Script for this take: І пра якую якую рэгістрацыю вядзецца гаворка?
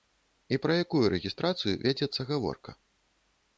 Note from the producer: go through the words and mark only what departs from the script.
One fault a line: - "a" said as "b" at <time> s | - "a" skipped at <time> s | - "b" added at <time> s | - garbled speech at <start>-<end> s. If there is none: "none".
- "якую" skipped at 1.0 s